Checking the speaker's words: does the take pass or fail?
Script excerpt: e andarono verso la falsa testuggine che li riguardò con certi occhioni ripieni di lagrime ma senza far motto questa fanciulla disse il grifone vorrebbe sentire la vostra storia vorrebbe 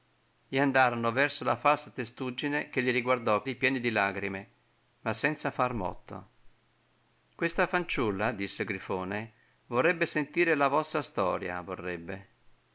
fail